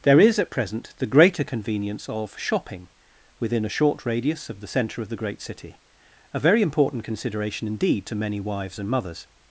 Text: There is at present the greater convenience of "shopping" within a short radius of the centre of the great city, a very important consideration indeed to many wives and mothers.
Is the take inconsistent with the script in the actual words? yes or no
no